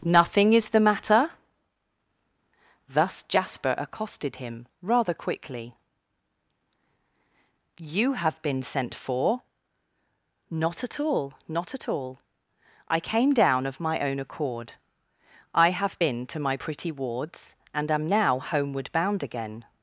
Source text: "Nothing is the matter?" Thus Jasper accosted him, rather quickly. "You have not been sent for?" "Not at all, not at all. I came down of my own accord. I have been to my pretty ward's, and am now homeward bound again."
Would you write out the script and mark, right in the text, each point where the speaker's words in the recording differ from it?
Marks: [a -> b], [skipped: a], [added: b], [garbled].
"Nothing is the matter?" Thus Jasper accosted him, rather quickly. "You have [skipped: not] been sent for?" "Not at all, not at all. I came down of my own accord. I have been to my pretty ward's, and am now homeward bound again."